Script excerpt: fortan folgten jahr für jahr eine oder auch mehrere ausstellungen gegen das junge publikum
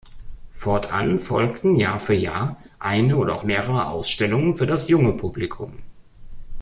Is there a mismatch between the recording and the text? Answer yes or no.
yes